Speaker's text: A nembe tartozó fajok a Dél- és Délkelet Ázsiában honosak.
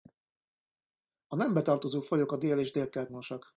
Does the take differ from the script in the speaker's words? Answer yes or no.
yes